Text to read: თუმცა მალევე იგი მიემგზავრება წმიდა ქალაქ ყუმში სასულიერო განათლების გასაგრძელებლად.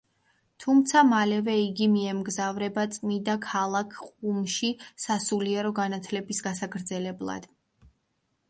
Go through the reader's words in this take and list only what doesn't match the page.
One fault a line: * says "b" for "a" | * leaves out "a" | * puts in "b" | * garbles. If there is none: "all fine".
all fine